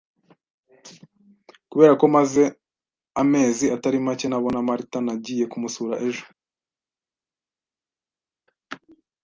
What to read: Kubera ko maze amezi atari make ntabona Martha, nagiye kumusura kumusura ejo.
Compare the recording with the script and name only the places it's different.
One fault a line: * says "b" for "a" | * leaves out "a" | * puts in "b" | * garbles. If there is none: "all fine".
* leaves out "kumusura"